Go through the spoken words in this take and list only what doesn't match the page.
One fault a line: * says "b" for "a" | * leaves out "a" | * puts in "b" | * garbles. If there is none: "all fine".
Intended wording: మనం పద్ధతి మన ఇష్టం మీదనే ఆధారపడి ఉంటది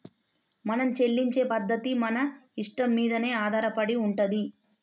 * puts in "చెల్లించే"